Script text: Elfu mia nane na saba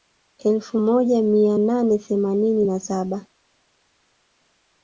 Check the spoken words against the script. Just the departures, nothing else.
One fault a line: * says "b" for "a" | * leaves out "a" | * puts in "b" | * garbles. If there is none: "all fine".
* puts in "moja"
* puts in "themanini"